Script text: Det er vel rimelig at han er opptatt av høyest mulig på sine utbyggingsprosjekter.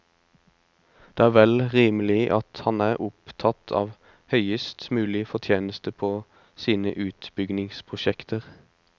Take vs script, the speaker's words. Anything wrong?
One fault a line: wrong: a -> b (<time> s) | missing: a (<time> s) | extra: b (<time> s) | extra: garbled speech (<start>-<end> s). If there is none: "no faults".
extra: fortjeneste (5.3 s)